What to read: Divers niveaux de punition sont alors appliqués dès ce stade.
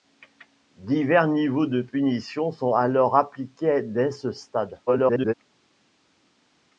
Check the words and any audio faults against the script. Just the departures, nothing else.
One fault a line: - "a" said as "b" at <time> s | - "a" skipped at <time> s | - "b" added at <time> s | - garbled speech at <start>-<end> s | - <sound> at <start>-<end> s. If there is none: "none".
- garbled speech at 4.9-5.3 s